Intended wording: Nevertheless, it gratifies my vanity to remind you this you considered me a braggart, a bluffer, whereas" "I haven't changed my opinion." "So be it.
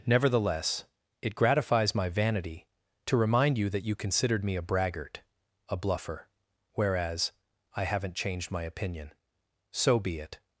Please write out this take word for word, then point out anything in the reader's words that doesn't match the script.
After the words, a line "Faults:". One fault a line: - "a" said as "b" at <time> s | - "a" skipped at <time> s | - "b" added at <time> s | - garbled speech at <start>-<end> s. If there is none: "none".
Nevertheless, it gratifies my vanity to remind you that you considered me a braggart, a bluffer, whereas" "I haven't changed my opinion." "So be it.
Faults:
- "this" said as "that" at 3.7 s